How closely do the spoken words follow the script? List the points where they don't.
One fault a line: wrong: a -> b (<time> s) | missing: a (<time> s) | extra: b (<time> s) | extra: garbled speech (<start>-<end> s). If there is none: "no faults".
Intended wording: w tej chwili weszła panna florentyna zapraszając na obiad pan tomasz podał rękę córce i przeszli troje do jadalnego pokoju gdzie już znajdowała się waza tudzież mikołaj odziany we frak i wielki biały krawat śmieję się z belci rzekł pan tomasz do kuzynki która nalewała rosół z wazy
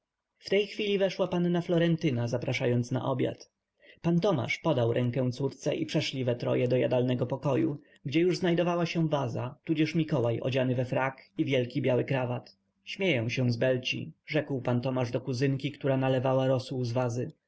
extra: we (6.2 s)